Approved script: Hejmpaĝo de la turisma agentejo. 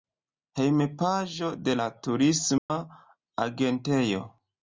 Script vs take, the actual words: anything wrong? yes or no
no